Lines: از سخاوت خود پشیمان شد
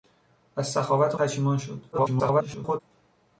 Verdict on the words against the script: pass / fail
fail